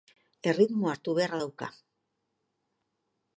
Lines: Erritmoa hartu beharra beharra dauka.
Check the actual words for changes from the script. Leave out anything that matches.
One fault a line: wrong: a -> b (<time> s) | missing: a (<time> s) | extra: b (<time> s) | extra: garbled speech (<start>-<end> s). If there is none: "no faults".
missing: beharra (1.4 s)